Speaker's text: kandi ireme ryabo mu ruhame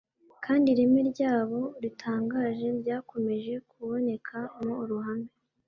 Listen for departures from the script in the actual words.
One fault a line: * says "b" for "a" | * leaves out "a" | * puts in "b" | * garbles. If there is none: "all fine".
* puts in "ritangaje ryakomeje kuboneka"